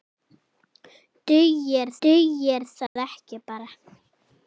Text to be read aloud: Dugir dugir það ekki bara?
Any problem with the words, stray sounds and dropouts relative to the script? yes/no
yes